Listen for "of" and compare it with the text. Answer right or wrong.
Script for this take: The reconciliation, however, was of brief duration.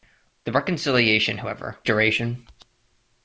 wrong